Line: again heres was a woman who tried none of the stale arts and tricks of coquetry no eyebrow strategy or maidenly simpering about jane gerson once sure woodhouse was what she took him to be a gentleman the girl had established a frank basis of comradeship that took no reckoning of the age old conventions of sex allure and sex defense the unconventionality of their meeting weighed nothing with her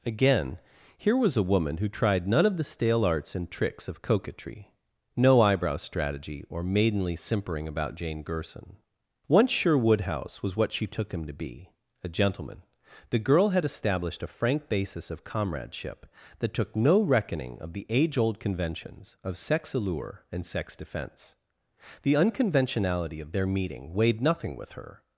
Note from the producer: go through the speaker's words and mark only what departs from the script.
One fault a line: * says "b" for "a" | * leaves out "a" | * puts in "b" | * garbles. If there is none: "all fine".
* says "here" for "heres"